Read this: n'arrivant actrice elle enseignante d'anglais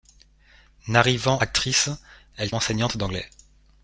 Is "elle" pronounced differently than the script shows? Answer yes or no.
no